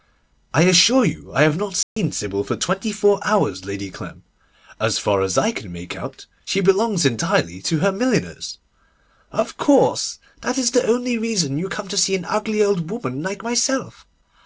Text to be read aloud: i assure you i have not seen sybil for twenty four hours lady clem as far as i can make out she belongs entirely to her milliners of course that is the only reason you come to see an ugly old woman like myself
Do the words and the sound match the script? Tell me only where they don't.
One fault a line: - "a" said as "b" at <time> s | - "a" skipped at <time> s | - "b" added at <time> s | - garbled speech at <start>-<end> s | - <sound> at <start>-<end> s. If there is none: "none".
- dropout at 1.8-2.0 s